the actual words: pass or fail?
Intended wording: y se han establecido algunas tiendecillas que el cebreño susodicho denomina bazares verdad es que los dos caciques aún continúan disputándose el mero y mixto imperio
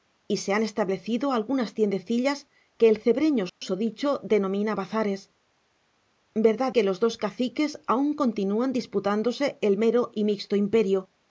fail